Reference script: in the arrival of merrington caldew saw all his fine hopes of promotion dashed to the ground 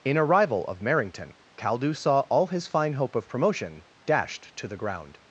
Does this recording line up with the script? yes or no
no